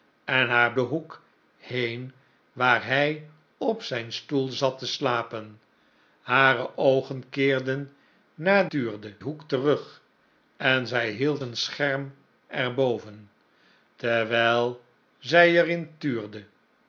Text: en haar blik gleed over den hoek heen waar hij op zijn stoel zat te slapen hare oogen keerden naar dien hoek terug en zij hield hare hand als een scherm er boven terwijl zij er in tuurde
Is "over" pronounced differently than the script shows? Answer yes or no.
yes